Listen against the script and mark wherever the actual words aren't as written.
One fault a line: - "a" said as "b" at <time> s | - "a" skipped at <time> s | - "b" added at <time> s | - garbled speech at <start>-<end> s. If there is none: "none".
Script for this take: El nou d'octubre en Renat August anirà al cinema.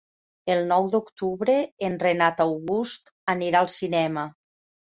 none